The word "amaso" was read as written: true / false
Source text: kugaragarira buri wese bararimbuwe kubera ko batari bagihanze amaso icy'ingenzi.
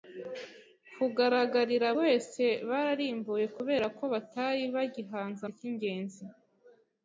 false